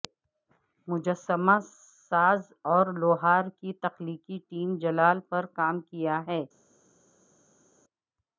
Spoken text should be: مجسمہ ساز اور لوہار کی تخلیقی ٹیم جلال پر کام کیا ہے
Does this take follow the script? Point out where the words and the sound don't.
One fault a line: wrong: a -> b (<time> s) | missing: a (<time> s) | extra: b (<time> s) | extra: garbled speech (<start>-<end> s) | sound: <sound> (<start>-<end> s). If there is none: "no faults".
no faults